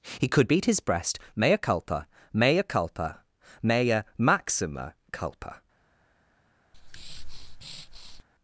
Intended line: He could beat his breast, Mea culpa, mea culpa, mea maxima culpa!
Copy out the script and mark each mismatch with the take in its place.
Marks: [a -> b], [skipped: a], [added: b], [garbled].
He could beat his breast, Mea culpa, mea culpa, mea maxima culpa!